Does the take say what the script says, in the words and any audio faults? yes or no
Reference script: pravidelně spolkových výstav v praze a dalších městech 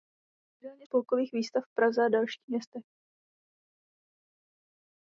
yes